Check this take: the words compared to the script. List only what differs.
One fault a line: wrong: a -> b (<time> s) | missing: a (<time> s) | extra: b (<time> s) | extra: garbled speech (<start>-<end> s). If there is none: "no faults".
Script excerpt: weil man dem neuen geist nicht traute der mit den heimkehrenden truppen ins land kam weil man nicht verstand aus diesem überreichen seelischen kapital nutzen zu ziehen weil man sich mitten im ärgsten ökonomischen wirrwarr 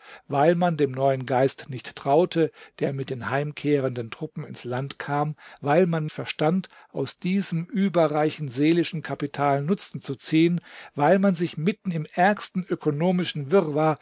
missing: nicht (6.1 s)